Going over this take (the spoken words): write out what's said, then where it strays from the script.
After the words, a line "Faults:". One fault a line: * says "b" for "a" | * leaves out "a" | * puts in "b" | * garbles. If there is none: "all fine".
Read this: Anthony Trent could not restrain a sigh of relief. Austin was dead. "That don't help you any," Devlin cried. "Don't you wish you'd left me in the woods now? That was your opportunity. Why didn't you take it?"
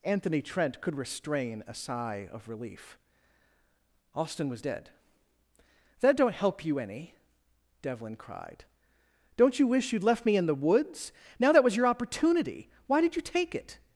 Anthony Trent could restrain a sigh of relief. Austin was dead. "That don't help you any," Devlin cried. "Don't you wish you'd left me in the woods now? That was your opportunity. Why did you take it?"
Faults:
* leaves out "not"
* says "did" for "didn't"